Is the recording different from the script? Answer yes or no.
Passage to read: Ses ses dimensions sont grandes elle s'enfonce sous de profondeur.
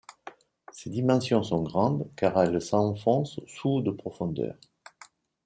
yes